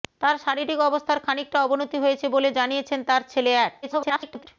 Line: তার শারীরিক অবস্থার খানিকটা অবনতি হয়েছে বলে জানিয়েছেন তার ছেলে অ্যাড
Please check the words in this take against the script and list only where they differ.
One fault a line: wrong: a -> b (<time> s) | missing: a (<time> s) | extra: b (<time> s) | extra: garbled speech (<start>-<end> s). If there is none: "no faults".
extra: garbled speech (3.8-4.5 s)